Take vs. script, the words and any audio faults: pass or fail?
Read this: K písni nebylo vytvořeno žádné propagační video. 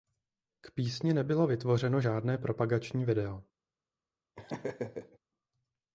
fail